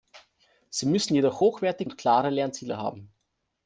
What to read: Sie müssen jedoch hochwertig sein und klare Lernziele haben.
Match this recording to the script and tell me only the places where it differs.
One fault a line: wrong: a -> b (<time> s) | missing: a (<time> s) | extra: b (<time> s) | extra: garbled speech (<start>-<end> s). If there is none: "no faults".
missing: sein (1.9 s)